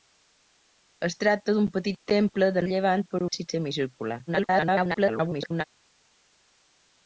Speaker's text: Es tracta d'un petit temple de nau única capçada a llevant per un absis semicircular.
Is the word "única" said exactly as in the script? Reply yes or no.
no